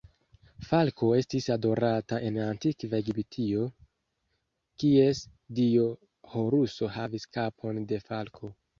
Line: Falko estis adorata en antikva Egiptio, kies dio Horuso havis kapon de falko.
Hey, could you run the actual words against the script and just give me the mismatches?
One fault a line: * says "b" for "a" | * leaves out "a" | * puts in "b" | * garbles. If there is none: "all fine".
all fine